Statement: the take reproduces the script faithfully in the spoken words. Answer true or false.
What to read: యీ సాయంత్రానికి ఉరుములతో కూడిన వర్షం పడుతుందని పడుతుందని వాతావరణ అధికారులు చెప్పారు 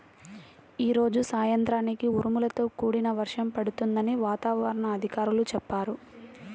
false